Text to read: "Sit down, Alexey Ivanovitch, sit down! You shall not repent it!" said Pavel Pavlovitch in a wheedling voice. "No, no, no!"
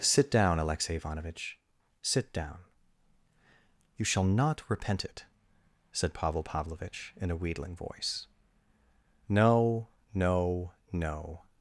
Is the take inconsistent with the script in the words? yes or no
no